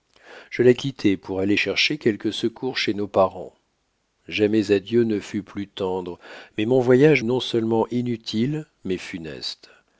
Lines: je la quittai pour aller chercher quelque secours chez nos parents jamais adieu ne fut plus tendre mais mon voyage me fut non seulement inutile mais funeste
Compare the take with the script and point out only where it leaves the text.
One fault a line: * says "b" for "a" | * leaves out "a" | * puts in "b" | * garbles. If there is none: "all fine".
* leaves out "me fut"